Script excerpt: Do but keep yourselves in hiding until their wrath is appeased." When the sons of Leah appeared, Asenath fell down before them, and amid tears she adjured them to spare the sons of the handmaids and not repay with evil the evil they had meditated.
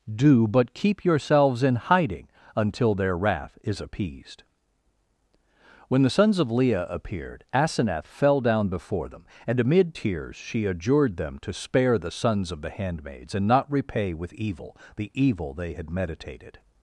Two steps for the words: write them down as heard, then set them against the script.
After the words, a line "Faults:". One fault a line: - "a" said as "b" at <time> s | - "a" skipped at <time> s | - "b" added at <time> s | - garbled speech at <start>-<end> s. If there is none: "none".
Do but keep yourselves in hiding until their wrath is appeased." When the sons of Leah appeared, Asenath fell down before them, and amid tears she adjured them to spare the sons of the handmaids and not repay with evil the evil they had meditated.
Faults:
none